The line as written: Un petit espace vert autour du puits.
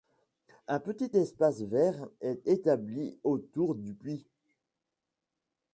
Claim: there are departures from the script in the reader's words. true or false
true